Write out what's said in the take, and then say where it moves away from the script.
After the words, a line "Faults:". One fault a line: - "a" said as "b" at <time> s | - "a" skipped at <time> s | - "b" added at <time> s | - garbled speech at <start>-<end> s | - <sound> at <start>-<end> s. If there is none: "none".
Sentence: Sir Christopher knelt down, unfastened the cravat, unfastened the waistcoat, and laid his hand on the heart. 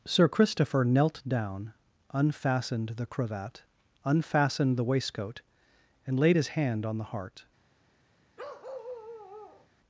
Sir Christopher knelt down, unfastened the cravat, unfastened the waistcoat, and laid his hand on the heart.
Faults:
- bark at 8.4-9.7 s